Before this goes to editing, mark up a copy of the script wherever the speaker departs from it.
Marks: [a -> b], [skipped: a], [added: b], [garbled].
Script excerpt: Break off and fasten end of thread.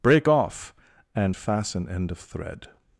Break off and fasten end of thread.